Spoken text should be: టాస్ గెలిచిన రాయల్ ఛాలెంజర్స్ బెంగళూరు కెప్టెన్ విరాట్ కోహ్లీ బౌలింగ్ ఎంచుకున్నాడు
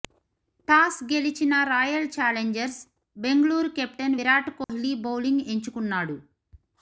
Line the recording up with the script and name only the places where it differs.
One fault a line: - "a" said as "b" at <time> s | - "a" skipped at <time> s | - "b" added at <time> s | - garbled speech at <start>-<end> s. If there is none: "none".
none